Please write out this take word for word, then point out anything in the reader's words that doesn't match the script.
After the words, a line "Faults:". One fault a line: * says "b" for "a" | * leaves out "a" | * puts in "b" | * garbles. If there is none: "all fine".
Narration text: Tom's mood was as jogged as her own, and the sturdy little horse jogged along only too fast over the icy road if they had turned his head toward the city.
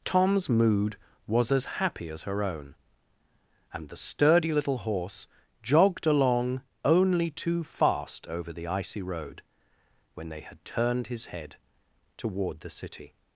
Tom's mood was as happy as her own, and the sturdy little horse jogged along only too fast over the icy road when they had turned his head toward the city.
Faults:
* says "happy" for "jogged"
* says "when" for "if"